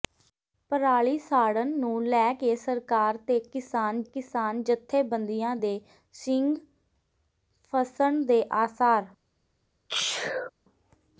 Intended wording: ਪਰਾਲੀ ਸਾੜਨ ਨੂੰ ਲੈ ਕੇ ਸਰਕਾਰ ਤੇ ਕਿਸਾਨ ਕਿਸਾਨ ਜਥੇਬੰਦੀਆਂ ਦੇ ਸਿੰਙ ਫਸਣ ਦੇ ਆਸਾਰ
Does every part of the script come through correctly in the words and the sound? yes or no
no